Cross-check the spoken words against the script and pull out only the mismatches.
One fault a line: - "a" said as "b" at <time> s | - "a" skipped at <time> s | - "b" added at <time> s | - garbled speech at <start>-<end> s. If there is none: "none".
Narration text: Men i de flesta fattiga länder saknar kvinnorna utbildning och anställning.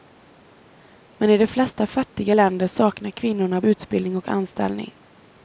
none